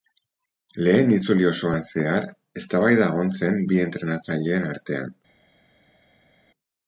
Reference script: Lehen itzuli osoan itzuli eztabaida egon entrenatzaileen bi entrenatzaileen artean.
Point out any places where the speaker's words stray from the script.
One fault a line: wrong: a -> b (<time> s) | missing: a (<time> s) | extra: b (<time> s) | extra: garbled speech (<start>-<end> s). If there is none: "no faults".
wrong: itzuli -> zehar (1.9 s)
wrong: entrenatzaileen -> zen (3.4 s)